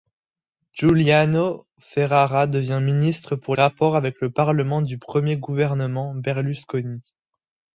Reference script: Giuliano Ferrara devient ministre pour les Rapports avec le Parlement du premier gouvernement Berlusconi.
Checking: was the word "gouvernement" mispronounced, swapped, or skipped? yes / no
no